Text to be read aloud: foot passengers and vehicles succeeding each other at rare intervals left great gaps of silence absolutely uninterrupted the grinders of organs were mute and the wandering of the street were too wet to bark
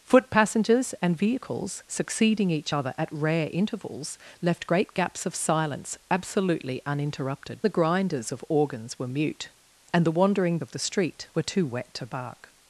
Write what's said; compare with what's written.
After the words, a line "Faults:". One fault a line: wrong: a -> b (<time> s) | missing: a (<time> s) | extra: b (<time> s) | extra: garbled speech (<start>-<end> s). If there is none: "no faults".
foot passengers and vehicles succeeding each other at rare intervals left great gaps of silence absolutely uninterrupted the grinders of organs were mute and the wandering of the street were too wet to bark
Faults:
no faults